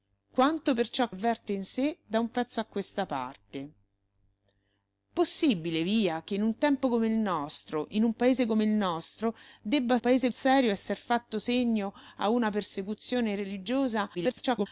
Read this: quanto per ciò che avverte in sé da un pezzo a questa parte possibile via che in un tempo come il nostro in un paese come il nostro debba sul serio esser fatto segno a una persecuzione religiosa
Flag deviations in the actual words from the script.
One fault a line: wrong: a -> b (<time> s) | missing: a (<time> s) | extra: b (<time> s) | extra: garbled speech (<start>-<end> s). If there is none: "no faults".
missing: che (1.1 s)
wrong: sul -> paese (10.0 s)
extra: garbled speech (14.1-14.7 s)